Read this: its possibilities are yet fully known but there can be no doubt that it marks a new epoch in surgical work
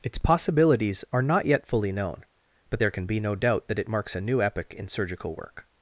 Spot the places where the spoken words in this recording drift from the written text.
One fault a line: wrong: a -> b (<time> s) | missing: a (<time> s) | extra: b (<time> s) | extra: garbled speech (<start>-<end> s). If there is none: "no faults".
extra: not (1.2 s)